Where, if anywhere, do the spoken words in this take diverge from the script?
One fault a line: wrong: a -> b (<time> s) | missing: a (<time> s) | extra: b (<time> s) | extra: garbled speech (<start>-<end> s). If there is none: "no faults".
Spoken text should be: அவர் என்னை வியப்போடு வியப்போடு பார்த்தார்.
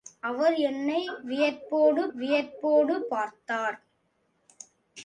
no faults